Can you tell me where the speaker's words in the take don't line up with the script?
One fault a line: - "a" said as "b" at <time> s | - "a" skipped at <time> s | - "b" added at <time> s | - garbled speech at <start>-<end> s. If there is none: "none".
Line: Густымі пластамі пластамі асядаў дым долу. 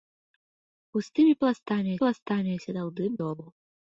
none